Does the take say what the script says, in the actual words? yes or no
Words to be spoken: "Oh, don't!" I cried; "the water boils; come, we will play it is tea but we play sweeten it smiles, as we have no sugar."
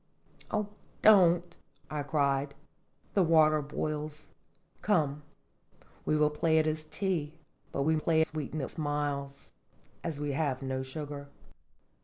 yes